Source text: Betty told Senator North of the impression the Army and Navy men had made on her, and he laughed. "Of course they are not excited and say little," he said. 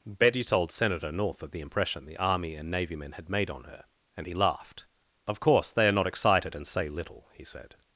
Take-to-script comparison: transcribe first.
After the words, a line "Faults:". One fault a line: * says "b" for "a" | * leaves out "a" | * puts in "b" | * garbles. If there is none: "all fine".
Betty told Senator North of the impression the Army and Navy men had made on her, and he laughed. "Of course they are not excited and say little," he said.
Faults:
all fine